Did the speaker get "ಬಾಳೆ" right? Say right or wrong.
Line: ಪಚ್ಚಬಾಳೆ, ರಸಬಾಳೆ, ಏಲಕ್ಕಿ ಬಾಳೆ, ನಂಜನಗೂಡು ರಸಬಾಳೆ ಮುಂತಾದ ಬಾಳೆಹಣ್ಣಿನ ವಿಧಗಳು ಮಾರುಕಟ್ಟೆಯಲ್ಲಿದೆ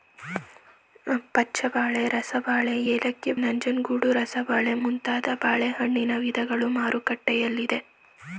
wrong